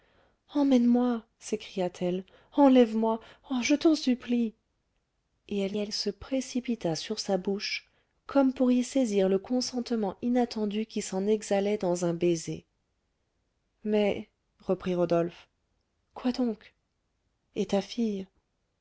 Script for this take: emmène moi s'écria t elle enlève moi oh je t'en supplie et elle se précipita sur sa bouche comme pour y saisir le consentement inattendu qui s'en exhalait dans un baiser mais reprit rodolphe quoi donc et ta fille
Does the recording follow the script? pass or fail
fail